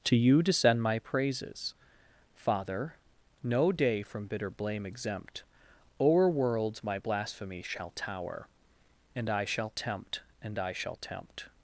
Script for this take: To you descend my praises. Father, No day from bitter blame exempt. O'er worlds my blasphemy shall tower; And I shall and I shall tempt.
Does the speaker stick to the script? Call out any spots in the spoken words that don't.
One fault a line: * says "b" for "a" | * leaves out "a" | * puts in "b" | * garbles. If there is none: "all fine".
* puts in "tempt"